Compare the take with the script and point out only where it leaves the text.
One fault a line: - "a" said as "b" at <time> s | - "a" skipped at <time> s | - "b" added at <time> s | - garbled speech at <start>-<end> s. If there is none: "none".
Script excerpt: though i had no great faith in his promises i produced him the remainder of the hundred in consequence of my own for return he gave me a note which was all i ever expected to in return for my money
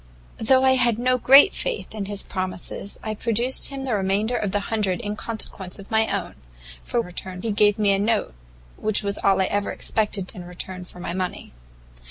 none